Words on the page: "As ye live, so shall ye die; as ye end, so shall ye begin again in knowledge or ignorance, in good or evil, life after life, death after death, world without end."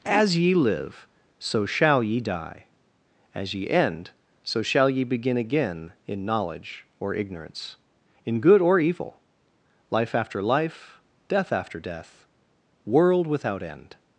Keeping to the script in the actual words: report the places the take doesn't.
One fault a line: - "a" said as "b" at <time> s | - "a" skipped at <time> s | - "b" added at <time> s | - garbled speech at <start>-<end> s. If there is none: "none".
none